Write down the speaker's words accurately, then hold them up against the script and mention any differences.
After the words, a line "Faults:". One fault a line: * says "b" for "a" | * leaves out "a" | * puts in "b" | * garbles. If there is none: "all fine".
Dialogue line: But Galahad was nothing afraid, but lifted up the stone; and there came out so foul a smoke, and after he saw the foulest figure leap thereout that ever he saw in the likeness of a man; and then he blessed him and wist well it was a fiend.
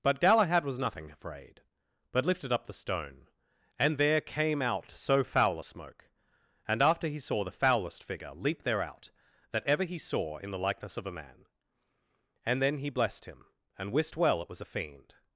But Galahad was nothing afraid, but lifted up the stone; and there came out so foul a smoke, and after he saw the foulest figure leap thereout that ever he saw in the likeness of a man; and then he blessed him and wist well it was a fiend.
Faults:
all fine